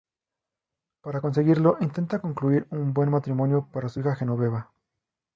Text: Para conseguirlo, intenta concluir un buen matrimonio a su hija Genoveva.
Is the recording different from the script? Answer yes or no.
yes